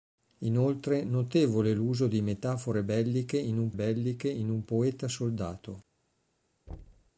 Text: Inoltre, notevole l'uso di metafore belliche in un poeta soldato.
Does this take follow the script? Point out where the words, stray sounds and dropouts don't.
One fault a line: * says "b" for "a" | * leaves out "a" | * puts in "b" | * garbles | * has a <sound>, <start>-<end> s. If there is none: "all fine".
* puts in "belliche in un"
* has a thud, 6.7-7.1 s